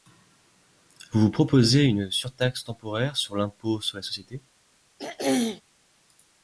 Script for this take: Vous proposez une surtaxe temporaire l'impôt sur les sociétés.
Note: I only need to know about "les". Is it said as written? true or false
true